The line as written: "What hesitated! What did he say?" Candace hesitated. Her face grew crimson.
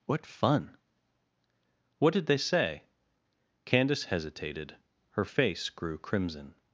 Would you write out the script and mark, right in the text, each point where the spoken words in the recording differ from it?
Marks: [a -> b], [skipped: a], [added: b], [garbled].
"What [hesitated! -> fun] What did [he -> they] say?" Candace hesitated. Her face grew crimson.